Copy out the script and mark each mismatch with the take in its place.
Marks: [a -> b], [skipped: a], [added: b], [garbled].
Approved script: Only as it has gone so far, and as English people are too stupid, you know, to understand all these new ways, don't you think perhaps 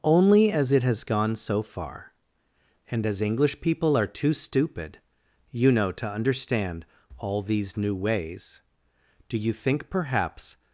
Only as it has gone so far, and as English people are too stupid, you know, to understand all these new ways, [don't -> do] you think perhaps